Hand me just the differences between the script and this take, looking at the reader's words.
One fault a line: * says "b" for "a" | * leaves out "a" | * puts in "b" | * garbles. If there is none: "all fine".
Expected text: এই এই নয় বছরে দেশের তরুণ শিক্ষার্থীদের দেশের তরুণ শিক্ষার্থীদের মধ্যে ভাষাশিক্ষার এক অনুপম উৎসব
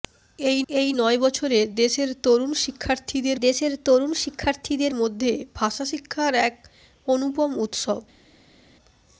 all fine